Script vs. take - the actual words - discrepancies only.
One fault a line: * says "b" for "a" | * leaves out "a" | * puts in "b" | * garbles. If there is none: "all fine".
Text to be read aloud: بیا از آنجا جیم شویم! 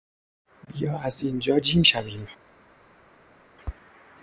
* says "اینجا" for "آنجا"